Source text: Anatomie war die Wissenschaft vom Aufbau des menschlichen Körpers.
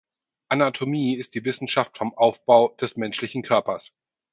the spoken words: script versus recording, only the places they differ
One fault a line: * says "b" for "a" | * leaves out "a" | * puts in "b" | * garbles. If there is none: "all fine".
* says "ist" for "war"